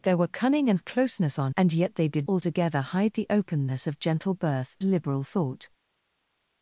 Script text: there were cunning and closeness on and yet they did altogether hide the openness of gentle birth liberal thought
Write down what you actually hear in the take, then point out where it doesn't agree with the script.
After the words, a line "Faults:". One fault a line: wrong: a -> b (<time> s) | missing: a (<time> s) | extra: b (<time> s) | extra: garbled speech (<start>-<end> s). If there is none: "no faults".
there were cunning and closeness on and yet they did altogether hide the openness of gentle birth liberal thought
Faults:
no faults